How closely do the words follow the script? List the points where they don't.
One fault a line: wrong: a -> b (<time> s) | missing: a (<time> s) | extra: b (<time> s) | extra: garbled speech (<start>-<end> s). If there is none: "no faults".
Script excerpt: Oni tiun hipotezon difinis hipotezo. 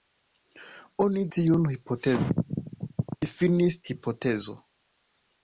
no faults